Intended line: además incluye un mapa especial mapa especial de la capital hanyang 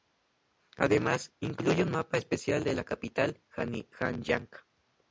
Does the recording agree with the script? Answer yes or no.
no